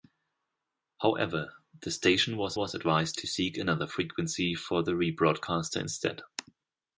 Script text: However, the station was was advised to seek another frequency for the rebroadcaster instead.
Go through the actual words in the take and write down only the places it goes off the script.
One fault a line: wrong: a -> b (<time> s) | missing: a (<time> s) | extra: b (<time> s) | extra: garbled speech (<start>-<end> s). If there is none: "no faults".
no faults